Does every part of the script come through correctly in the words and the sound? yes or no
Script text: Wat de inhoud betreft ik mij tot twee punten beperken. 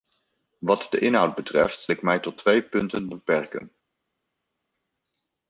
yes